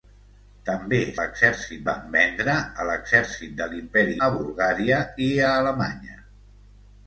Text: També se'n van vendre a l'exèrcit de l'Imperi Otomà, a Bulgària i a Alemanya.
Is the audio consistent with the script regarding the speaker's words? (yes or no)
no